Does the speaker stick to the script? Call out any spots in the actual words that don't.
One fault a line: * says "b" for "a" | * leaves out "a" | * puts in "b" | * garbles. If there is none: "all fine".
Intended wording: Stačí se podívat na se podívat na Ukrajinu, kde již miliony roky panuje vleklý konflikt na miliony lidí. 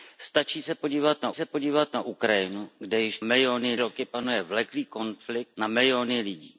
all fine